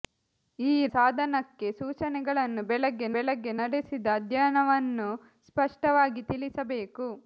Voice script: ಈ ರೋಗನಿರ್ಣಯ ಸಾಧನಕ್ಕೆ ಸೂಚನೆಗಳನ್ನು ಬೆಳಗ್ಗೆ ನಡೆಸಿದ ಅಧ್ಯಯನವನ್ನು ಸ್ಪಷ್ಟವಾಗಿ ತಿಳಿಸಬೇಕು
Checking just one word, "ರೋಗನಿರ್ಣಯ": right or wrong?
wrong